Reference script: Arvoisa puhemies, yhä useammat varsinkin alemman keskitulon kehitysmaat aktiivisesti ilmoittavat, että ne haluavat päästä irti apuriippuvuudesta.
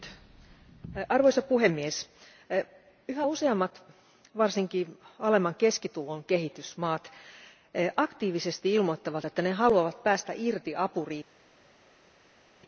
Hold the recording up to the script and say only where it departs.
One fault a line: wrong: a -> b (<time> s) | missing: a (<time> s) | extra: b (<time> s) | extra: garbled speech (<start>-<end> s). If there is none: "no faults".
no faults